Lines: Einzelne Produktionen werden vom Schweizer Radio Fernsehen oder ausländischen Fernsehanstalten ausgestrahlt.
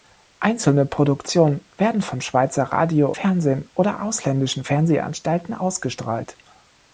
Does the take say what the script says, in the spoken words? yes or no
yes